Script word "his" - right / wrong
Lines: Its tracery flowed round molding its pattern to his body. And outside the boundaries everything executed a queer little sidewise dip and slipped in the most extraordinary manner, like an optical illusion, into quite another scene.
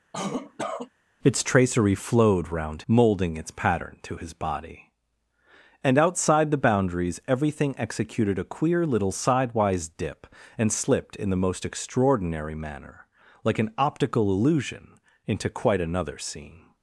right